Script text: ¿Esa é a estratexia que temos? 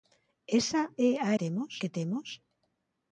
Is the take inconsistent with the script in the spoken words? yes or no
yes